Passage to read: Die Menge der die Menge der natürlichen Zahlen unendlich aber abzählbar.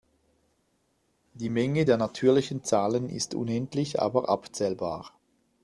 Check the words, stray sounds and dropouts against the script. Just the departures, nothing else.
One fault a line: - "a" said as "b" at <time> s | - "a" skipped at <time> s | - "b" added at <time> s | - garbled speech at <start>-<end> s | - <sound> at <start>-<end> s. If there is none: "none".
- "die Menge der" skipped at 2.0 s
- "ist" added at 3.1 s